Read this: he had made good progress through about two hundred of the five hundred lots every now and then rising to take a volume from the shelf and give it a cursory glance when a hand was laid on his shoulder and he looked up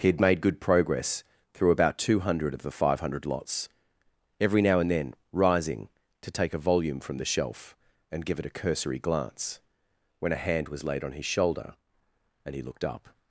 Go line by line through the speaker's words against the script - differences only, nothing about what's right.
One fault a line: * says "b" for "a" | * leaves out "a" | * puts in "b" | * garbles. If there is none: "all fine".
all fine